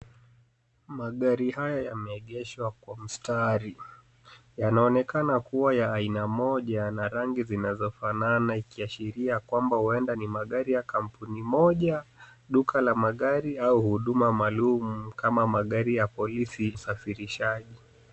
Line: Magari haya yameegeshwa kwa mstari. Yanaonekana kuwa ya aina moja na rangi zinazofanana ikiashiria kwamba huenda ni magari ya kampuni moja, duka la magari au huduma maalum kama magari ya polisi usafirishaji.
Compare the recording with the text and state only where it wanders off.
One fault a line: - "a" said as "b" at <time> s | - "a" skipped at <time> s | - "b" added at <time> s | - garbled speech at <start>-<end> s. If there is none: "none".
none